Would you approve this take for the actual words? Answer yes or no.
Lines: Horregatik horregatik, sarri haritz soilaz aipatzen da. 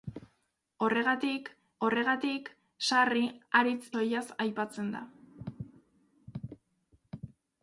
yes